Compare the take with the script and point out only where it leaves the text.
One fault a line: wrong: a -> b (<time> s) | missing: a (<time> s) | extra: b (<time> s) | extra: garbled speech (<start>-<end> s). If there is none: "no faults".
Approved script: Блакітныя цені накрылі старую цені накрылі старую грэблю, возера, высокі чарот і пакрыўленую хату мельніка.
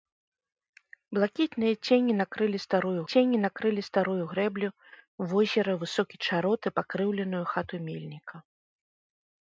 no faults